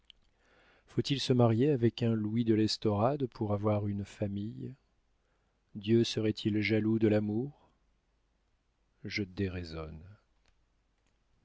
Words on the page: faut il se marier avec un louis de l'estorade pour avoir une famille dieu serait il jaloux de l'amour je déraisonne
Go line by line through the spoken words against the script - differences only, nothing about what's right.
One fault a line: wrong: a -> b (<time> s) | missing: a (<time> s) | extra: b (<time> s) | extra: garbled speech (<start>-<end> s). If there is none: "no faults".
no faults